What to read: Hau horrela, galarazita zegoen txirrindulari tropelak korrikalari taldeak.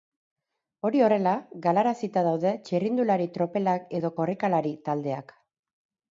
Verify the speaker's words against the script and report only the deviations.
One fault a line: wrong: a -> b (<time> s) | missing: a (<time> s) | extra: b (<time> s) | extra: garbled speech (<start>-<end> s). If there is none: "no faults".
wrong: Hau -> Hori (0.9 s)
wrong: zegoen -> daude (2.3 s)
extra: edo (4.0 s)